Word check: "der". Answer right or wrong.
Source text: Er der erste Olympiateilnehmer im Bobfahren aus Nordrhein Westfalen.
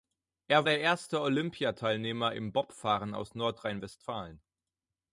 right